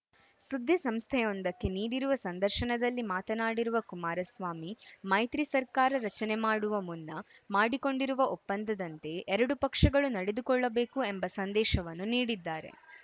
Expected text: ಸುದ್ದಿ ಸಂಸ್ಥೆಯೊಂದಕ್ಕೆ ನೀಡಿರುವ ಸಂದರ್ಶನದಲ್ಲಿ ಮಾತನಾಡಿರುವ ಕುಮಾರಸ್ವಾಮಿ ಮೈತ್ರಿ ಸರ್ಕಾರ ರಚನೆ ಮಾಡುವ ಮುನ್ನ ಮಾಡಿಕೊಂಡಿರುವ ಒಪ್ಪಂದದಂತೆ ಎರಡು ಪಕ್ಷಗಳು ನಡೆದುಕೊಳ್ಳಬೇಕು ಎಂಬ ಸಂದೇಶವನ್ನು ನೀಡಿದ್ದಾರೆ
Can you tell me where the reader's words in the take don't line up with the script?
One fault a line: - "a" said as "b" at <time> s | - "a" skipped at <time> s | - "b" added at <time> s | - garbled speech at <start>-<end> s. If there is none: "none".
none